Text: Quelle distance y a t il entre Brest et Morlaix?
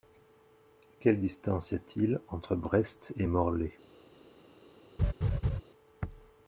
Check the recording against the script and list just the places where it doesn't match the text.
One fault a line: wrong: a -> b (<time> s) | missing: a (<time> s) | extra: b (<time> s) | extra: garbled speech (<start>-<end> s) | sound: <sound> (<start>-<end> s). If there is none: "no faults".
sound: laugh (5.0-5.6 s)